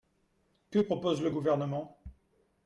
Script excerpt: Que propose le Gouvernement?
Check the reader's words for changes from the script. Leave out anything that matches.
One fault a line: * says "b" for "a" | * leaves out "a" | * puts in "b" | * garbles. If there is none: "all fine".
all fine